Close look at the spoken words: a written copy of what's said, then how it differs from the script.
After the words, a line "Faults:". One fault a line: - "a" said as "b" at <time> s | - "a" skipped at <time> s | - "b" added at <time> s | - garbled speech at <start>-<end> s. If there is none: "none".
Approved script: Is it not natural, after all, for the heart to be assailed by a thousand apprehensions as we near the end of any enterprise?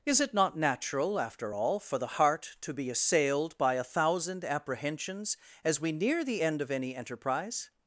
Is it not natural, after all, for the heart to be assailed by a thousand apprehensions as we near the end of any enterprise?
Faults:
none